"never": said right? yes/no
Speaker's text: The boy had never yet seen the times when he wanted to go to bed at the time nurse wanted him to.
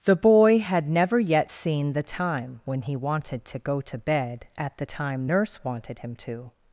yes